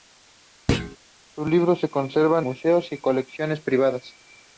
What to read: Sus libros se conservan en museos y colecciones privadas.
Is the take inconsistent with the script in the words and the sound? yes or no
yes